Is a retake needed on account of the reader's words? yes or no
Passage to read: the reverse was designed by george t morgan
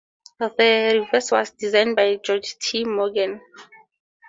no